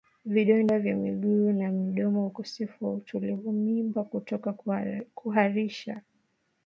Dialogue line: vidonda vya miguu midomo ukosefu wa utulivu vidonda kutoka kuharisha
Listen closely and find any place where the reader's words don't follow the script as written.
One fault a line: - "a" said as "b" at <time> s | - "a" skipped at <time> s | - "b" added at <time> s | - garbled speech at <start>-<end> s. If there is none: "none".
- "na" added at 1.5 s
- "vidonda" said as "mimba" at 3.5 s